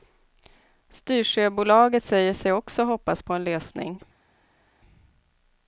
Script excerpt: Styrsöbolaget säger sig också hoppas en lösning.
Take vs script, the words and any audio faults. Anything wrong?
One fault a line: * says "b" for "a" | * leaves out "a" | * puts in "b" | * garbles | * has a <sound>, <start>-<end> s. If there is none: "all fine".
* puts in "på"